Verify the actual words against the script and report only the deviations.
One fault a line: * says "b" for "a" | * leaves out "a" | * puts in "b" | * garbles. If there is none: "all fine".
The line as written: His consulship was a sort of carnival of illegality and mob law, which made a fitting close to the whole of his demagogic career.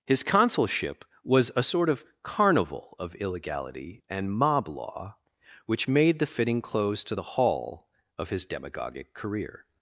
* says "the" for "a"
* says "hall" for "whole"